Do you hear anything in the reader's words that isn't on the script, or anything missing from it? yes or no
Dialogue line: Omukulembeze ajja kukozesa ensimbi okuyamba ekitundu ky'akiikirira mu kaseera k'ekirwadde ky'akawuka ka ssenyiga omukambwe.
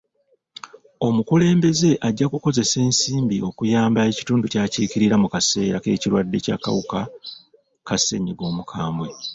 no